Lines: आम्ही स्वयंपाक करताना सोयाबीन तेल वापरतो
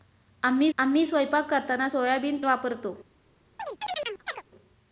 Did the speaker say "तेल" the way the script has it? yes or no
no